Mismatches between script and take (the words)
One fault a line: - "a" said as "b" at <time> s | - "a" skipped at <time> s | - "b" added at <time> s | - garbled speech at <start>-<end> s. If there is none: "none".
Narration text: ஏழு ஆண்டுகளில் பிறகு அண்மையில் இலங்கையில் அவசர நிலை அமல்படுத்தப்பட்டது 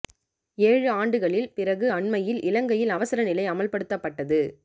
none